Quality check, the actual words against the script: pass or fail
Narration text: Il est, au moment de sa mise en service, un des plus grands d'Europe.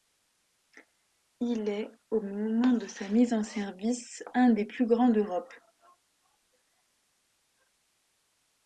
pass